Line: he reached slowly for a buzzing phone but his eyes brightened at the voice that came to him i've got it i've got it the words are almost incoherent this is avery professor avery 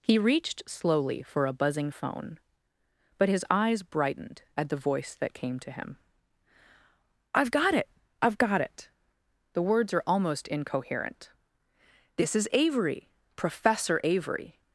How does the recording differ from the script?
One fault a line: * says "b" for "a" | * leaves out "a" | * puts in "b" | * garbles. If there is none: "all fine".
all fine